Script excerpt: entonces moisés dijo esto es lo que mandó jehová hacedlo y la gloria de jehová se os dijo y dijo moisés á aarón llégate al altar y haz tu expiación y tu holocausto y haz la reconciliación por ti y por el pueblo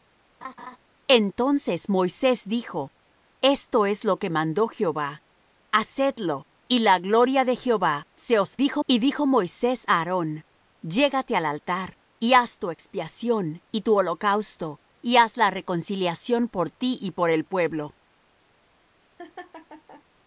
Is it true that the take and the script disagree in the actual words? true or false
false